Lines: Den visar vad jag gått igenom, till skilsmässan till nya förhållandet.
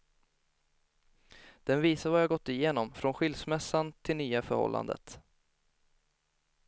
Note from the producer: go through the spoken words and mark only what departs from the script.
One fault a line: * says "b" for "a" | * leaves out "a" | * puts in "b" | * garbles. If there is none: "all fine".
* says "från" for "till"